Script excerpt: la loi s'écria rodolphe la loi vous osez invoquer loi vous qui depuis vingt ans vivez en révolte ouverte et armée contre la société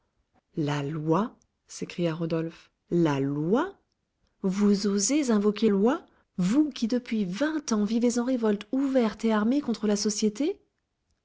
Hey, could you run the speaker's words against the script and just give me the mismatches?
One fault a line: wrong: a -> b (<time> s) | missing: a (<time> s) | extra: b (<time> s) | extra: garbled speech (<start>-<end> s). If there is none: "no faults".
no faults